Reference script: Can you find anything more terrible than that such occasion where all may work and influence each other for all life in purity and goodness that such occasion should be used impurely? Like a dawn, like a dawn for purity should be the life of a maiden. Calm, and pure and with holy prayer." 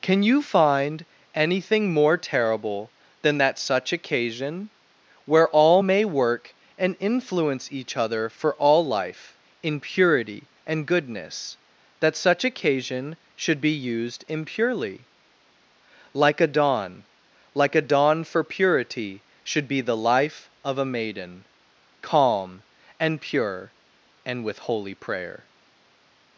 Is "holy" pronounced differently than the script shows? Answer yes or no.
no